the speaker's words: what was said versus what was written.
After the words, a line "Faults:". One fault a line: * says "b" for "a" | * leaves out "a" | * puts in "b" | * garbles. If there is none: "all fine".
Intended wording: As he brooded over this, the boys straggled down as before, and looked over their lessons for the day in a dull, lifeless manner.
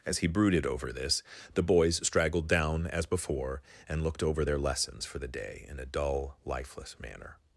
As he brooded over this, the boys straggled down as before, and looked over their lessons for the day in a dull, lifeless manner.
Faults:
all fine